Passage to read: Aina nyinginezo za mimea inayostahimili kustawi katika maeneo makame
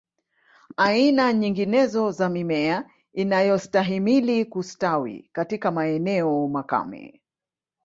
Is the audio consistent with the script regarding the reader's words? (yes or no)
yes